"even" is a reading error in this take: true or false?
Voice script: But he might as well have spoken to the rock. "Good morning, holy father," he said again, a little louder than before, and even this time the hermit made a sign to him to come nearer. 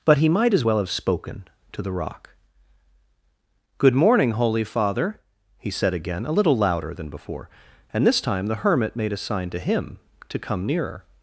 true